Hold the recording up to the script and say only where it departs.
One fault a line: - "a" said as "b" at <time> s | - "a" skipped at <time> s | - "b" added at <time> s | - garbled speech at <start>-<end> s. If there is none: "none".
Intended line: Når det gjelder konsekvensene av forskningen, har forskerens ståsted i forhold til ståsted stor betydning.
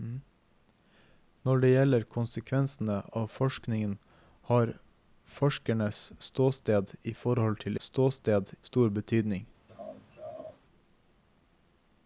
none